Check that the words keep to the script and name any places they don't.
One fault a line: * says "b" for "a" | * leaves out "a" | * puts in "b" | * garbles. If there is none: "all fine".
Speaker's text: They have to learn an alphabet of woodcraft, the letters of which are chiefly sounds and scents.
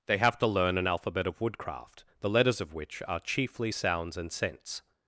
all fine